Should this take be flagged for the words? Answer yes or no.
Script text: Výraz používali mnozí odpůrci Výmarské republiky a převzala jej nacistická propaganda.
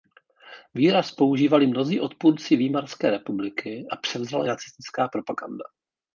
yes